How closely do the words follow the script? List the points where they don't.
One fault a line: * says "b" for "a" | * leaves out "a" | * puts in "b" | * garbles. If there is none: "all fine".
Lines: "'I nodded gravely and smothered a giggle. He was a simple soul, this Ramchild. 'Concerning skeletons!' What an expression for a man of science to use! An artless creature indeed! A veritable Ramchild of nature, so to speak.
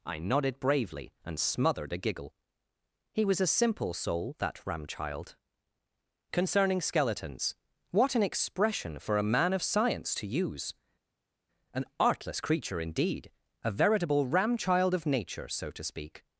* says "bravely" for "gravely"
* says "that" for "this"